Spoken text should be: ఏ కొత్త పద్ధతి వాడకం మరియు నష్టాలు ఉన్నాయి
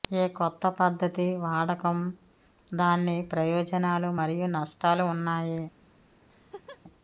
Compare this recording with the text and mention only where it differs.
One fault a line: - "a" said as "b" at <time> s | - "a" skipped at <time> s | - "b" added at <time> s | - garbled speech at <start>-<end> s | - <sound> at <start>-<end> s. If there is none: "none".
- "దాని ప్రయోజనాలు" added at 2.7 s
- laugh at 6.3-6.8 s